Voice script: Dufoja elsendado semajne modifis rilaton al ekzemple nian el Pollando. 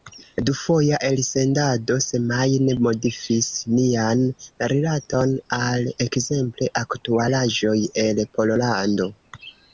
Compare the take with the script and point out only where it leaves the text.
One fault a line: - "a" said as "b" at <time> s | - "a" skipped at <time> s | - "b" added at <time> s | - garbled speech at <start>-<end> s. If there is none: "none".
- "nian" added at 3.8 s
- "nian" said as "aktualaĵoj" at 6.8 s